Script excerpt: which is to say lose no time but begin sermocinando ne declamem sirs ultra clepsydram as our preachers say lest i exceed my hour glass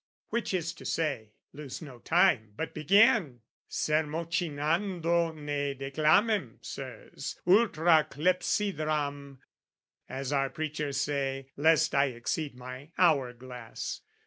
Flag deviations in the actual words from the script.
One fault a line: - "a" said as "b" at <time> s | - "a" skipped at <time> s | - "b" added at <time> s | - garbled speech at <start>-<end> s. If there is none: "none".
none